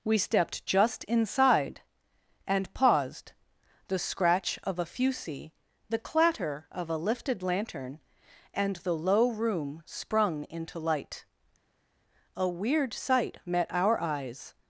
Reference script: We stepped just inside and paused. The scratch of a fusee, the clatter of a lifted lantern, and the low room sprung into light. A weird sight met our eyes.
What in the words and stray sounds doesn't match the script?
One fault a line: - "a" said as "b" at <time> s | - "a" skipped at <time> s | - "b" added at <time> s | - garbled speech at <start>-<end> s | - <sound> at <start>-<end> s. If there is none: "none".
none